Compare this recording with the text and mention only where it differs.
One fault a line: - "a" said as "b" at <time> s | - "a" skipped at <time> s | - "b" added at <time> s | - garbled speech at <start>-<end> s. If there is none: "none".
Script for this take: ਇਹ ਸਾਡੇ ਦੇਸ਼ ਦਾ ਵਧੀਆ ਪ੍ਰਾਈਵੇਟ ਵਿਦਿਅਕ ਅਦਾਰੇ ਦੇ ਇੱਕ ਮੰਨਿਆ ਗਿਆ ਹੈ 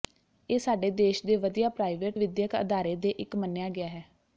- "ਦਾ" said as "ਦੇ" at 1.2 s